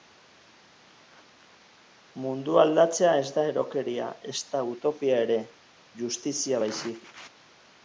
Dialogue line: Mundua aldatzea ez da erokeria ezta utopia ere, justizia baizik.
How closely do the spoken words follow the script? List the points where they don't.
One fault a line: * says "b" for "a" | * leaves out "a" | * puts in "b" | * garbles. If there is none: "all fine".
all fine